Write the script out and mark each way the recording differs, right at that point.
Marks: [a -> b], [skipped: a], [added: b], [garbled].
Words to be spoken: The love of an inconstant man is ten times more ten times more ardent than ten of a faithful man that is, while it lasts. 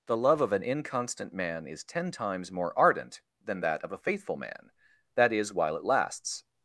The love of an inconstant man is ten times more [skipped: ten times more] ardent than [ten -> that] of a faithful man that is, while it lasts.